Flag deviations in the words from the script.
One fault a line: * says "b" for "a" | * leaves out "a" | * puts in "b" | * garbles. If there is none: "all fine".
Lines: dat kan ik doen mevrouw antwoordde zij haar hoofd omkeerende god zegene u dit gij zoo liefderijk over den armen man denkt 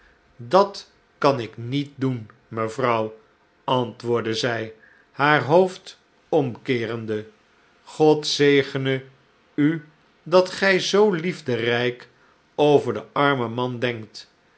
* puts in "niet"
* says "dat" for "dit"